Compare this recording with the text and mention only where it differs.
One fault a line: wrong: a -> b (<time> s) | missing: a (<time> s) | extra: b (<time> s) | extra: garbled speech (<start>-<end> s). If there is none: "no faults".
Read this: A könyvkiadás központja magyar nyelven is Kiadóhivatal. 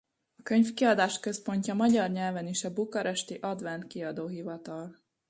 extra: a bukaresti Advent (2.6 s)